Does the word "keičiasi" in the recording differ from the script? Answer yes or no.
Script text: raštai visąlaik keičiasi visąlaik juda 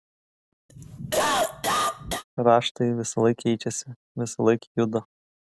no